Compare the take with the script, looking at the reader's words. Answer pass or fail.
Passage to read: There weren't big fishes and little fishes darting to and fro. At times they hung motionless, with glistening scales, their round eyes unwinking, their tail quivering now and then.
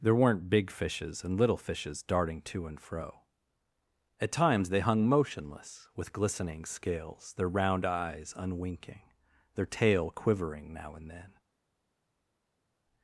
pass